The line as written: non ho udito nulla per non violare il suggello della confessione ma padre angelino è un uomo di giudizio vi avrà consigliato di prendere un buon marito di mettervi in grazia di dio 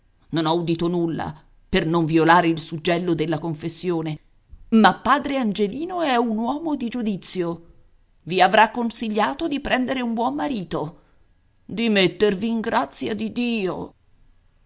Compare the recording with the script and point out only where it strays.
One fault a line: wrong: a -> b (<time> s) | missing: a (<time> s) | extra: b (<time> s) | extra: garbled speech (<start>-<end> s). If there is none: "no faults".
no faults